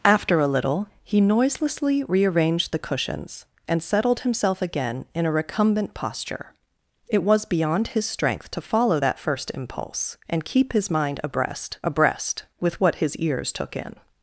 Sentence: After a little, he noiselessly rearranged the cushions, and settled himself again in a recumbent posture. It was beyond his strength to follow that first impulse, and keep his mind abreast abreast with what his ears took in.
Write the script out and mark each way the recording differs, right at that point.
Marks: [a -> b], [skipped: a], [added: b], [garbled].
After a little, he noiselessly rearranged the cushions, and settled himself again in a recumbent posture. It was beyond his strength to follow that first impulse, and keep his mind abreast abreast with what his ears took in.